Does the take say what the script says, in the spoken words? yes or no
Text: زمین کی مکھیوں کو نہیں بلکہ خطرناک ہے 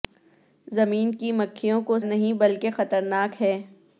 yes